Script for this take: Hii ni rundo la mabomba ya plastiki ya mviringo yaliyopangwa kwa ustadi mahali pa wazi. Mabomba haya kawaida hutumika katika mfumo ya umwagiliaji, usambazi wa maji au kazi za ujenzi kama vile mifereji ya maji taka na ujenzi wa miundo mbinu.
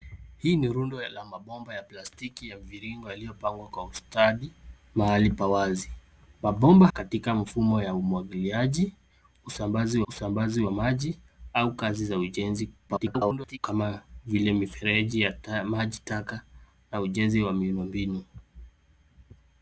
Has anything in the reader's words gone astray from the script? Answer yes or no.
yes